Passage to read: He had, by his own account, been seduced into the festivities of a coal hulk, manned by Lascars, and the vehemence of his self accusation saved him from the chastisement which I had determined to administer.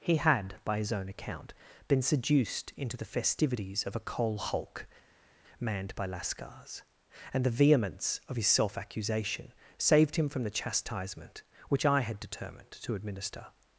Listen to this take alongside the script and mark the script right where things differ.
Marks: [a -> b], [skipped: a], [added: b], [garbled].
He had, by his own account, been seduced into the festivities of a coal hulk, manned by Lascars, and the vehemence of his self accusation saved him from the chastisement which I had determined to administer.